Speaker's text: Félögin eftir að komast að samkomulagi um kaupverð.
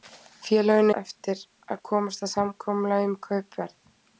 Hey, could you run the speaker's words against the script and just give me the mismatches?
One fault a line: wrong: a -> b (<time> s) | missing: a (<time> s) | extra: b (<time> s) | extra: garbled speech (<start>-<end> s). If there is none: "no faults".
no faults